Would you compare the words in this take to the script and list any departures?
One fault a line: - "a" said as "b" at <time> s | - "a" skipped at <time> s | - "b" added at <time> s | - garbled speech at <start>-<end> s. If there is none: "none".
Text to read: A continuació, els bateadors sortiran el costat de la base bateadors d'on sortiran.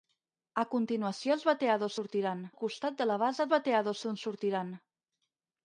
none